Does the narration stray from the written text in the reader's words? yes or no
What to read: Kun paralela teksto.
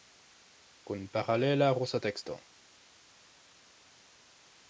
yes